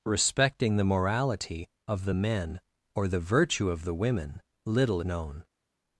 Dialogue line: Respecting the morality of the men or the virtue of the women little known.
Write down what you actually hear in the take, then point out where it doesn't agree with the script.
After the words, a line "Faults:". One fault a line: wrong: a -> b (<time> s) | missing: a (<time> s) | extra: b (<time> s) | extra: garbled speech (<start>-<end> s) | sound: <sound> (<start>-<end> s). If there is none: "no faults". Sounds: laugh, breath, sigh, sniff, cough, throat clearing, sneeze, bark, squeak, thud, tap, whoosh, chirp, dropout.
Respecting the morality of the men or the virtue of the women little known.
Faults:
no faults